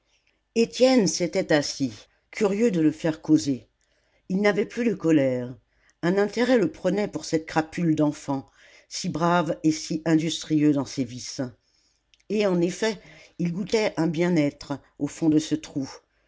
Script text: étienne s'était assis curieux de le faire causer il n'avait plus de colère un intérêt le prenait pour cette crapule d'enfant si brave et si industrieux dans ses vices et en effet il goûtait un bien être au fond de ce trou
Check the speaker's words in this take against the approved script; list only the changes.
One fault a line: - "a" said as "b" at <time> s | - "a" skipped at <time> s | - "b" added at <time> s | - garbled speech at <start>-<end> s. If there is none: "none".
none